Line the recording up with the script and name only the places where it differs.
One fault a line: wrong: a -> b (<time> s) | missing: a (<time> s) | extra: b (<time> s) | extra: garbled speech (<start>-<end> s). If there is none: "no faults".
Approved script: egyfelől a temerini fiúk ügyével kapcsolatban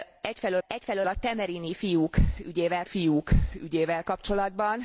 extra: egyfelől (0.7 s)
extra: fiúk ügyével (2.8 s)